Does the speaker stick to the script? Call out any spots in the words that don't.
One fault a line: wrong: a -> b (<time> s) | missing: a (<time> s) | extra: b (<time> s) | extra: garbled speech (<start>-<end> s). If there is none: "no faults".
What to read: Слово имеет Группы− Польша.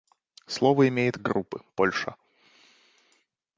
no faults